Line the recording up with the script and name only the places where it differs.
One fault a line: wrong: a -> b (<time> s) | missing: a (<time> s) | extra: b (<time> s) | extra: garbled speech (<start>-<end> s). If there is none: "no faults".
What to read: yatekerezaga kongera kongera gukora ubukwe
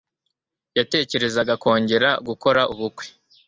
missing: kongera (2.1 s)